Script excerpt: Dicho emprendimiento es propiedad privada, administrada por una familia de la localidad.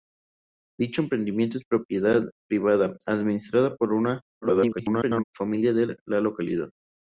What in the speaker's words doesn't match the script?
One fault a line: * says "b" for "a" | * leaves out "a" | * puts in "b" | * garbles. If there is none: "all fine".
* garbles